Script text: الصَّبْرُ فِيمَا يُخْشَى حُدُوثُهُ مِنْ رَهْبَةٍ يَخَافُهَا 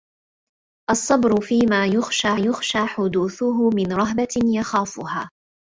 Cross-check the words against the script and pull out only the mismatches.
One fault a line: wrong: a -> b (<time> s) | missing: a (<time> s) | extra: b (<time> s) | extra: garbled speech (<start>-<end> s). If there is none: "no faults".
extra: يُخْشَى (2.4 s)